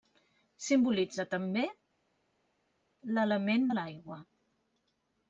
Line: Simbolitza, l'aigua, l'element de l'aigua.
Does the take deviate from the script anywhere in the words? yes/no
yes